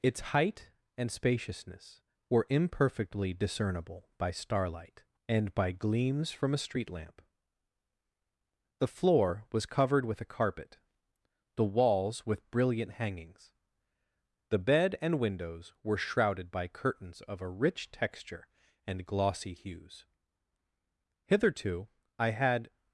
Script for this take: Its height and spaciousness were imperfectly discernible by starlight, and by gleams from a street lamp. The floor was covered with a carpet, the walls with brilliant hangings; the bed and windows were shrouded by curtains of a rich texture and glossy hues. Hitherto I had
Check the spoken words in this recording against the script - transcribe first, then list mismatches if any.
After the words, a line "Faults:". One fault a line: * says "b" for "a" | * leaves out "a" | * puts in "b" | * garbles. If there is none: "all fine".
Its height and spaciousness were imperfectly discernible by starlight, and by gleams from a street lamp. The floor was covered with a carpet, the walls with brilliant hangings; the bed and windows were shrouded by curtains of a rich texture and glossy hues. Hitherto I had
Faults:
all fine